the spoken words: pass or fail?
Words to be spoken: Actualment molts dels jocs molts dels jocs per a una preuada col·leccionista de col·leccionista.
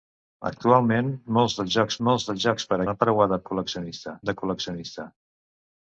pass